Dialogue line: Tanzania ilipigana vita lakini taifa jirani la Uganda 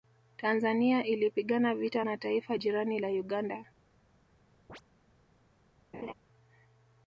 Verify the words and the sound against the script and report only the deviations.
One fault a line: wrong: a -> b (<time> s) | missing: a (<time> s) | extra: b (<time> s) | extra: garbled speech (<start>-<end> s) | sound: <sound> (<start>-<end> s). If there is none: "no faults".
wrong: lakini -> na (2.0 s)
sound: chirp (4.7-4.8 s)
sound: laugh (5.9-6.1 s)